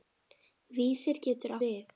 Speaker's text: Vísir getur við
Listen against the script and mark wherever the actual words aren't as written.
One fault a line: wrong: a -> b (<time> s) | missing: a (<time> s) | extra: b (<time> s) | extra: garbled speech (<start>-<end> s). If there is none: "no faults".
no faults